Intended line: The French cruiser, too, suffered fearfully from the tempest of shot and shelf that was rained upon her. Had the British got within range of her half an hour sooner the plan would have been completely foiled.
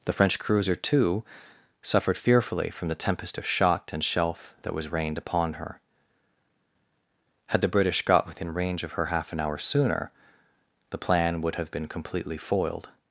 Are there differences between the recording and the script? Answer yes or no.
no